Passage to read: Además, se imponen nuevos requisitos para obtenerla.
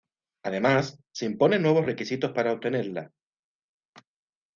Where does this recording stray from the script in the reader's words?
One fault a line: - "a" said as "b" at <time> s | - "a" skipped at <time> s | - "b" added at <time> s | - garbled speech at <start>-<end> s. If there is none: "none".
none